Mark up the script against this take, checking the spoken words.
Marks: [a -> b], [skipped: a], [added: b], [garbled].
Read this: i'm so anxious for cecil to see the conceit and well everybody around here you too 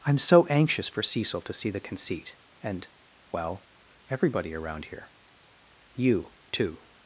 i'm so anxious for cecil to see the conceit and well everybody around here you too